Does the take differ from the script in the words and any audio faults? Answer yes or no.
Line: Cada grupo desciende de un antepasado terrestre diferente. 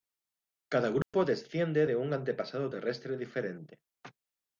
yes